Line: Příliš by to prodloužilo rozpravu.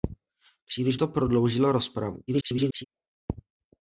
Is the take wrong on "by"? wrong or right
wrong